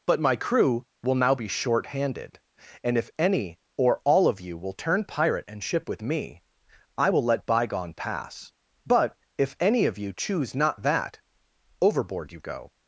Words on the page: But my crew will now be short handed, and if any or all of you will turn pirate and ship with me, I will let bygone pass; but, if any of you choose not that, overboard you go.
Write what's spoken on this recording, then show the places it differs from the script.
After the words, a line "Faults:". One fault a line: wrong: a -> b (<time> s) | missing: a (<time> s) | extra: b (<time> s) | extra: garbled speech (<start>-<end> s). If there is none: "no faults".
But my crew will now be short handed, and if any or all of you will turn pirate and ship with me, I will let bygone pass; but, if any of you choose not that, overboard you go.
Faults:
no faults